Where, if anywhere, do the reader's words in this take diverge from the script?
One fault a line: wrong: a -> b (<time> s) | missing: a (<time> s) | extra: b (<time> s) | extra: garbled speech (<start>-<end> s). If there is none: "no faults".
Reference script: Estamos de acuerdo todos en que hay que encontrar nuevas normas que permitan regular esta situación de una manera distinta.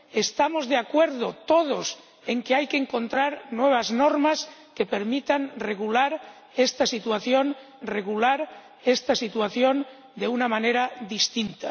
extra: regular esta situación (7.8 s)